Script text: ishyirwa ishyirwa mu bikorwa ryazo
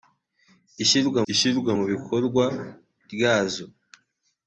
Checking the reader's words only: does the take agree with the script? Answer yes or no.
yes